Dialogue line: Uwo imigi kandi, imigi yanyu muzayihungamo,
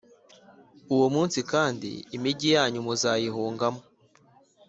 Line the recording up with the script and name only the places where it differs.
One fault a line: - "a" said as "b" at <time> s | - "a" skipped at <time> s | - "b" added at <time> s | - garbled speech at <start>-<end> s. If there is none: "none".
- "imigi" said as "munsi" at 1.1 s